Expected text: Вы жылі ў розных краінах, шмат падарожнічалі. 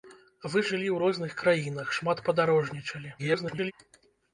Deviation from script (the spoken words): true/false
true